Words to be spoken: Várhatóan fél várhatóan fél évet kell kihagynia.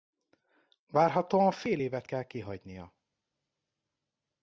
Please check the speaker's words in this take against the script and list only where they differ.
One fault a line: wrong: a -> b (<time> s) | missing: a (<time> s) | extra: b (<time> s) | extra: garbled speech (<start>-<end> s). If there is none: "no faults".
missing: várhatóan fél (1.8 s)